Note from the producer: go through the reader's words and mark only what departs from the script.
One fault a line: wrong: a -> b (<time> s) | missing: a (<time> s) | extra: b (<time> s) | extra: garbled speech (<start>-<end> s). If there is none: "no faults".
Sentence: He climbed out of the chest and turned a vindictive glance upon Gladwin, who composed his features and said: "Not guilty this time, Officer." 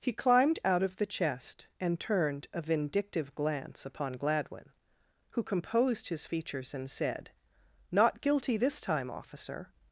no faults